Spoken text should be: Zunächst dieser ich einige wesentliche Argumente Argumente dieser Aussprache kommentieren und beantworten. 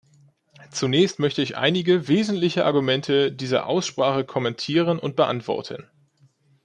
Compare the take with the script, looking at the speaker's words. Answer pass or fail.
fail